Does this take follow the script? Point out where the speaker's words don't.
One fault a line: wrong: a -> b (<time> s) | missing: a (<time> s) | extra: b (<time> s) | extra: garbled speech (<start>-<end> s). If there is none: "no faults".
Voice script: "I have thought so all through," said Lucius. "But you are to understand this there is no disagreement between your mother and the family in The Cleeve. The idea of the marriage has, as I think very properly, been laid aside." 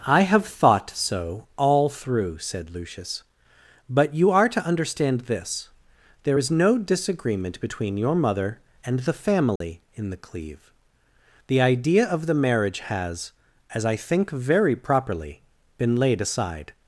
no faults